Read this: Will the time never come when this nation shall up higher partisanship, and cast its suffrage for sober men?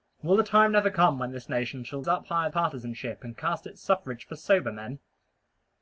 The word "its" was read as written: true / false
true